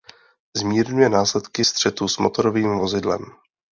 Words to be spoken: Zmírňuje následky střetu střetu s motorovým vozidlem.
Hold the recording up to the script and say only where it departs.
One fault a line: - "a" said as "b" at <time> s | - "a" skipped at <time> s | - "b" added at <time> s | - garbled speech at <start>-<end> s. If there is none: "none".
- "střetu" skipped at 2.1 s